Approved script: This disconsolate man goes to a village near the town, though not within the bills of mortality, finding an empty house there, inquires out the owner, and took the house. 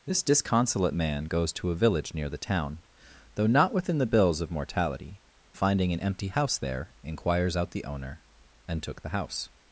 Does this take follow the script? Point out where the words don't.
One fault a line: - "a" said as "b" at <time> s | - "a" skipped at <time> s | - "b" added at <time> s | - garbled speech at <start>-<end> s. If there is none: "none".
none